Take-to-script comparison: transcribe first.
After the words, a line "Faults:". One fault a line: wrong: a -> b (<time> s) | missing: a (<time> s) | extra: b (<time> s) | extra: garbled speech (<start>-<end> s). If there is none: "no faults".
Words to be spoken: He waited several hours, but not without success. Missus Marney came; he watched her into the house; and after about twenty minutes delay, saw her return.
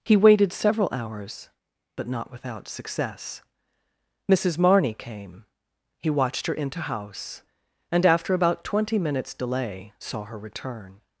He waited several hours, but not without success. Missus Marney came; he watched her into house; and after about twenty minutes delay, saw her return.
Faults:
missing: the (6.8 s)